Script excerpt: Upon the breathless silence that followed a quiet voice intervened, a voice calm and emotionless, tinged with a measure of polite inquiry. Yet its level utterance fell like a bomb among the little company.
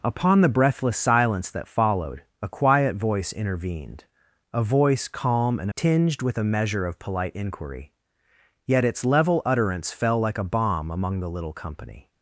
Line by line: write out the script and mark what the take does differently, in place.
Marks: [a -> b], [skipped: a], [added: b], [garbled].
Upon the breathless silence that followed a quiet voice intervened, a voice calm and [skipped: emotionless,] tinged with a measure of polite inquiry. Yet its level utterance fell like a bomb among the little company.